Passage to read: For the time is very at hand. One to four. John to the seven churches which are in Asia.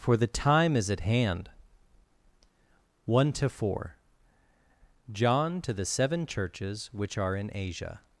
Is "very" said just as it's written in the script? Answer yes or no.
no